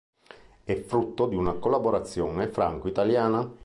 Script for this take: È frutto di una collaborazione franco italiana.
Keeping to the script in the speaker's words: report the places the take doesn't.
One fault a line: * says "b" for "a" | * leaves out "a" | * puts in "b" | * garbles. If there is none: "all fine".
all fine